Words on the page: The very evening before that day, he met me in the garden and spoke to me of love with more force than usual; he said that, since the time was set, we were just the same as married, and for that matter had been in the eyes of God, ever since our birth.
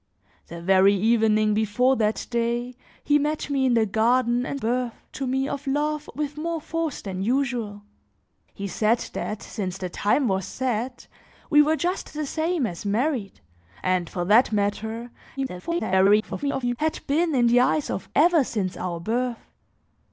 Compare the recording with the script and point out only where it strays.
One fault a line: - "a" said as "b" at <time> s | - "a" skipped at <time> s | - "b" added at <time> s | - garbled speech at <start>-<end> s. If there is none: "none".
- "spoke" said as "birth" at 4.6 s
- garbled speech at 15.4-16.8 s
- "God" skipped at 18.1 s